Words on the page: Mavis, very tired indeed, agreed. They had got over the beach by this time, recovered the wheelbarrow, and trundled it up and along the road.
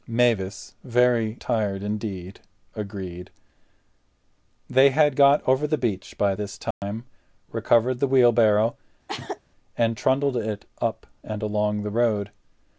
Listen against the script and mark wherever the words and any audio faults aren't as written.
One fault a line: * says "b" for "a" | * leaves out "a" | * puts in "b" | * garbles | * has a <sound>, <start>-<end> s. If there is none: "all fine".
* has a dropout, 6.7-6.8 s
* has a sneeze, 9.1-9.4 s